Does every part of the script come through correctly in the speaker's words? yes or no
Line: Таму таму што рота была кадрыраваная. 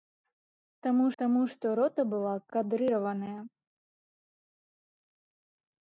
yes